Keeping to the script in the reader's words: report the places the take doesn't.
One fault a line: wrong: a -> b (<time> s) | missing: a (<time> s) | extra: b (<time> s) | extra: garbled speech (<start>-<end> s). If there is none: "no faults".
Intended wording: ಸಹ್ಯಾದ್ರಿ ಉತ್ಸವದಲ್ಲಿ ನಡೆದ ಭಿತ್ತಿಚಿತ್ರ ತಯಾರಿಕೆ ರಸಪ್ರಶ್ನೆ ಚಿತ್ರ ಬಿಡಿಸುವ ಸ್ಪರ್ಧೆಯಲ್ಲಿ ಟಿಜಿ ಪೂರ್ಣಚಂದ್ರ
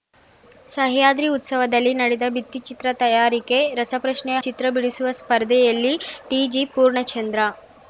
no faults